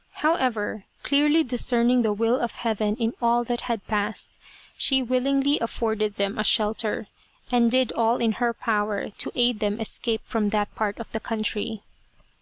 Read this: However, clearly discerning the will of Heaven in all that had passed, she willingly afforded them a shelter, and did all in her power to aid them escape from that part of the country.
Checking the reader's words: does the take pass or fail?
pass